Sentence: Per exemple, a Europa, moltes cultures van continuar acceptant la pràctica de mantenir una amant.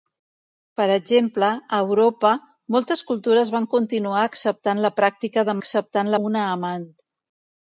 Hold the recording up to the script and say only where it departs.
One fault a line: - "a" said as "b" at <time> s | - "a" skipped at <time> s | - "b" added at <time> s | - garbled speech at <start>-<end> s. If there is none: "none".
- "mantenir" said as "acceptant" at 5.6 s